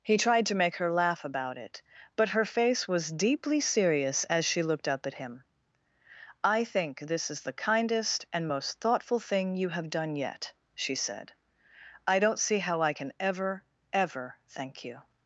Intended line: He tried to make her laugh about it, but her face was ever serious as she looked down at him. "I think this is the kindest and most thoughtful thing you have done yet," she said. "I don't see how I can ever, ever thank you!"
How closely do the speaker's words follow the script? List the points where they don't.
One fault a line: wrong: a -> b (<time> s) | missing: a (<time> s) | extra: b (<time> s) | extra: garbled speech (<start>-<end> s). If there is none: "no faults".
wrong: ever -> deeply (3.1 s)
wrong: down -> up (4.9 s)